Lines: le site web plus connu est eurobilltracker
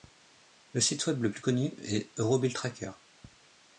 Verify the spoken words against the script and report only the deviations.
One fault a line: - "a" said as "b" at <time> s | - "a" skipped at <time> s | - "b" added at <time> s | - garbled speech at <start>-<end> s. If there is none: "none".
- "le" added at 1.2 s